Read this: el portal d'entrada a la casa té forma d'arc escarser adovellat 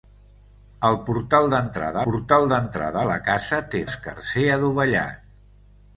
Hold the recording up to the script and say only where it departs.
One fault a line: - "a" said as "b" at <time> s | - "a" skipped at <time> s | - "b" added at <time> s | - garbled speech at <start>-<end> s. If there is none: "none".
- "portal d'entrada" added at 2.1 s
- "forma d'arc" skipped at 3.8 s